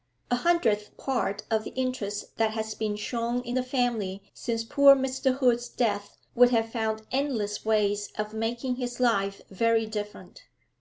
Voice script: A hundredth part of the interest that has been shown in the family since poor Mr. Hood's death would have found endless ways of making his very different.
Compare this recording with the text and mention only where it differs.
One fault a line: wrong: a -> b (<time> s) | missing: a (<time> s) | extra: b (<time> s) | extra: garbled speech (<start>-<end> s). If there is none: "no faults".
extra: life (9.0 s)